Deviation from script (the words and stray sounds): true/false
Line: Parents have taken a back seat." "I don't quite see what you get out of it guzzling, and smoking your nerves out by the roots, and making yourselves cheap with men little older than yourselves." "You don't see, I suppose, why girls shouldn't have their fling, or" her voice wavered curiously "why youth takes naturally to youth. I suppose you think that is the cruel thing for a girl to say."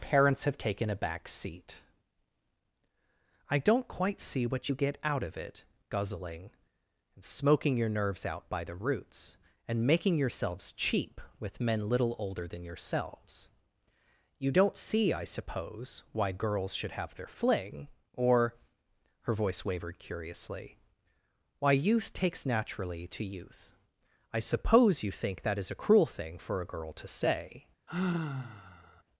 true